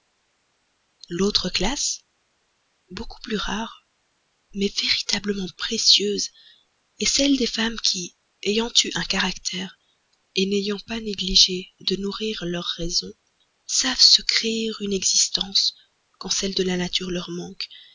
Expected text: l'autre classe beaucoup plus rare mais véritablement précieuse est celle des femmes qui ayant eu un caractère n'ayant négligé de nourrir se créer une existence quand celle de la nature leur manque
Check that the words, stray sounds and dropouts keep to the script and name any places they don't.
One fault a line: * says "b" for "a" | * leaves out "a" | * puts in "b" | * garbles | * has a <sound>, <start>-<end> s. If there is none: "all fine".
* puts in "pas"
* puts in "leur raison savent"